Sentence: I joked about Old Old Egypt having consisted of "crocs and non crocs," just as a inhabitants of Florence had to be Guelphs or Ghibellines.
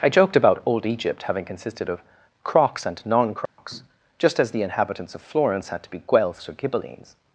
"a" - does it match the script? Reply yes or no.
no